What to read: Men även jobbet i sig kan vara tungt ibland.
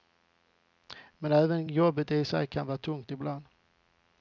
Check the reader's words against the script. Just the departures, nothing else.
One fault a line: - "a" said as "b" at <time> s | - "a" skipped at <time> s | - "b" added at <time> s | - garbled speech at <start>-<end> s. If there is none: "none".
none